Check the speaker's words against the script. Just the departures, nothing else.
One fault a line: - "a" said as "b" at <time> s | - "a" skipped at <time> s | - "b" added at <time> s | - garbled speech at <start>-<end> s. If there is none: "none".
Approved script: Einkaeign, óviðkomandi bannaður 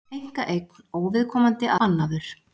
none